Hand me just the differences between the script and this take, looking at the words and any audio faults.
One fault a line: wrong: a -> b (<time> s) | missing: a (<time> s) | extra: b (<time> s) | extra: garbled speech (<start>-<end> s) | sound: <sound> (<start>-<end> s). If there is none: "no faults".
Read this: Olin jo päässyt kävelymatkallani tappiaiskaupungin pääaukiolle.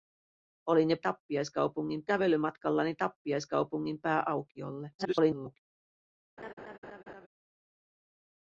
wrong: päässyt -> tappiaiskaupungin (1.0 s)
extra: garbled speech (5.0-5.6 s)
sound: laugh (6.4-7.3 s)